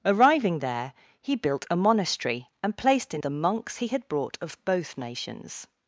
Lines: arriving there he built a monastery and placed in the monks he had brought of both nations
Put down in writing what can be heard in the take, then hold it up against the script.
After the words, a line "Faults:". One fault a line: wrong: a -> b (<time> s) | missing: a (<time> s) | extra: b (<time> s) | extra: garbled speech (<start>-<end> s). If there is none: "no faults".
arriving there he built a monastery and placed in the monks he had brought of both nations
Faults:
no faults